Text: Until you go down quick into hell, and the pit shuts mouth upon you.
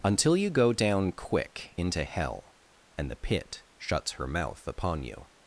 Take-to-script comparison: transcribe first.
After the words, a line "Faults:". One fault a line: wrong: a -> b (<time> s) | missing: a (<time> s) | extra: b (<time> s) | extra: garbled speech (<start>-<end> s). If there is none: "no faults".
Until you go down quick into hell, and the pit shuts her mouth upon you.
Faults:
extra: her (4.1 s)